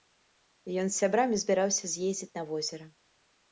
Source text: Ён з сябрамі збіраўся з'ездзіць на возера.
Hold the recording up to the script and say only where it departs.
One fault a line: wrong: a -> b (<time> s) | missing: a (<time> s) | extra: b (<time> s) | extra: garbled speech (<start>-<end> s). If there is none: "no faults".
no faults